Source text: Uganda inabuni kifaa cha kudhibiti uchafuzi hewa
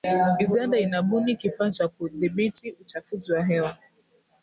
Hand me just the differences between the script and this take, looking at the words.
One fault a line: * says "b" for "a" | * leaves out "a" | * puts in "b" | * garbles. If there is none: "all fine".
* puts in "wa"